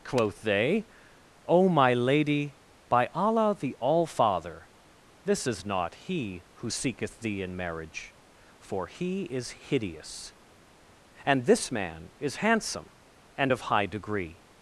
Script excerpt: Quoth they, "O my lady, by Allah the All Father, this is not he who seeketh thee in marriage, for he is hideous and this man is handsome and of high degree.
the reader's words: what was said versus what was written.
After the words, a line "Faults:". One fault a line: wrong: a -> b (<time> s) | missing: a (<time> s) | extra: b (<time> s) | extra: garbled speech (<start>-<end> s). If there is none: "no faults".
Quoth they, "O my lady, by Allah the All Father, this is not he who seeketh thee in marriage, for he is hideous and this man is handsome and of high degree.
Faults:
no faults